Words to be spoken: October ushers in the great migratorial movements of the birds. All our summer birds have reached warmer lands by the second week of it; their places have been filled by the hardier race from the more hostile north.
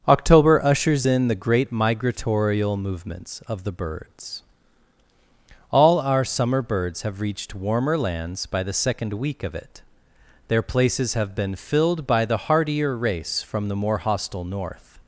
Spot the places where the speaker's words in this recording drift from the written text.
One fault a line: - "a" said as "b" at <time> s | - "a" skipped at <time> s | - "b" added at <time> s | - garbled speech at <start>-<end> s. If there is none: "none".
none